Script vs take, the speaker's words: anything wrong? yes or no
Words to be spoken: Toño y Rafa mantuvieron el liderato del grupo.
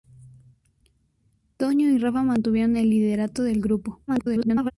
yes